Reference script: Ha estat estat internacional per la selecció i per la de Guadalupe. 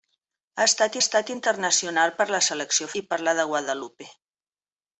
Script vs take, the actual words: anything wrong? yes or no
no